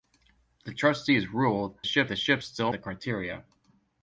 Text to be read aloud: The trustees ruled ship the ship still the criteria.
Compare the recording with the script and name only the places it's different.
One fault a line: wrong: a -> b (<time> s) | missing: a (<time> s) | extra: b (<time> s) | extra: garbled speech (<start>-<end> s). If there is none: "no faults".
no faults